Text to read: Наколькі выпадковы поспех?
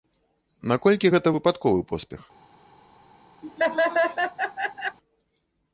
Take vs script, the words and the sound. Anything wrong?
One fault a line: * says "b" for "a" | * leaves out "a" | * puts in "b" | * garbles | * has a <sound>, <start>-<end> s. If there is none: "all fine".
* puts in "гэта"
* has a laugh, 3.4-5.0 s